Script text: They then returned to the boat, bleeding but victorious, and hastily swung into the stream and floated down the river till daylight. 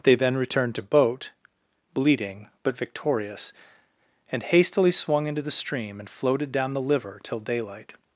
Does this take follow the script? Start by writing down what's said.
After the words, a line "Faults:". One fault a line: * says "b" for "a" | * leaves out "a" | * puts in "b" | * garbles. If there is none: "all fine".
They then returned to boat, bleeding but victorious, and hastily swung into the stream and floated down the liver till daylight.
Faults:
* leaves out "the"
* says "liver" for "river"